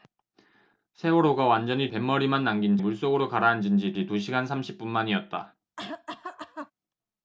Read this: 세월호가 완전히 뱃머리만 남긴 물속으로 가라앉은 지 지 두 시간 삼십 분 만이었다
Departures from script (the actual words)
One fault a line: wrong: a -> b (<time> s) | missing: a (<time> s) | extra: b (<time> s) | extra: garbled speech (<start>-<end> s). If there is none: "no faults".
no faults